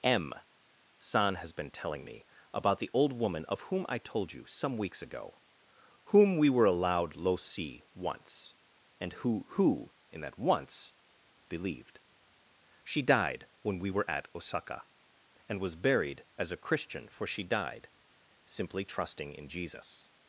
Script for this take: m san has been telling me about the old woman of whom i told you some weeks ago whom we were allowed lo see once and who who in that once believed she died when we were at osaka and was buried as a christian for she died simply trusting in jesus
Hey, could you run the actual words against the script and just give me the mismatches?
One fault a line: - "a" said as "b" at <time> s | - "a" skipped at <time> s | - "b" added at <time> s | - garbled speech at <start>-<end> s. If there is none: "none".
none